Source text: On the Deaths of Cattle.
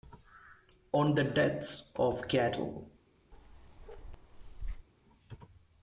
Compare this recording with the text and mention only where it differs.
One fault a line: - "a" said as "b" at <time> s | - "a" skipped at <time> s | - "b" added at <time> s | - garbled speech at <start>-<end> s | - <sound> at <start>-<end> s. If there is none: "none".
- bark at 3.3-4.9 s